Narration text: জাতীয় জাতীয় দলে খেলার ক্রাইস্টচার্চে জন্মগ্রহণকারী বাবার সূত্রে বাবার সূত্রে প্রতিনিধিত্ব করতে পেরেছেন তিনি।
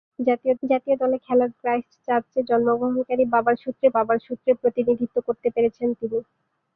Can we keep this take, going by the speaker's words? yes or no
yes